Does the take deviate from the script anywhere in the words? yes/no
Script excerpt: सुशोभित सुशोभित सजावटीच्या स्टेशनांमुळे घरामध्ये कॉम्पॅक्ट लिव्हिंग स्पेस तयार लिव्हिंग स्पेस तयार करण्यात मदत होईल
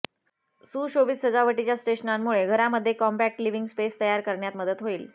yes